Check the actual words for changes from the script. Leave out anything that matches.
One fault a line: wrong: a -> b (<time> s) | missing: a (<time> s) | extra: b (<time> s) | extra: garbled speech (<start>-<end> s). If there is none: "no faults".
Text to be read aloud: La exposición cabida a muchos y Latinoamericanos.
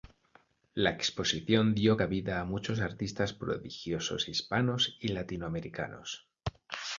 extra: dio (1.8 s)
extra: artistas prodigiosos Hispanos (2.8 s)